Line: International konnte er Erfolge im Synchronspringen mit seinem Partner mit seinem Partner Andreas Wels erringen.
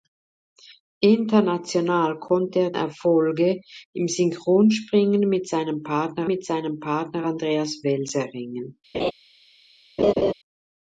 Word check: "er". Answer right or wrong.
right